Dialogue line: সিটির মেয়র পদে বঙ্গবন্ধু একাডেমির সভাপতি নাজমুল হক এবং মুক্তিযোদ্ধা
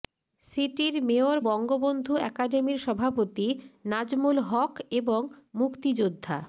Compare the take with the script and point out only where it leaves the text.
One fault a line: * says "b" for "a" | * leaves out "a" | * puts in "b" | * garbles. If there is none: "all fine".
* leaves out "পদে"